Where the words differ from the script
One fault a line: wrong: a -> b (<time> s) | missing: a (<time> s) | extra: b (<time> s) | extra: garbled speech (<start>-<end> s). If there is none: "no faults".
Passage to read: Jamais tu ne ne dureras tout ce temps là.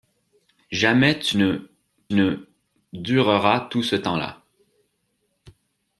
no faults